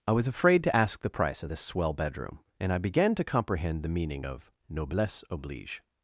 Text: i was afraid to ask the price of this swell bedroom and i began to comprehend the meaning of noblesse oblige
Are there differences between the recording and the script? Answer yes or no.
no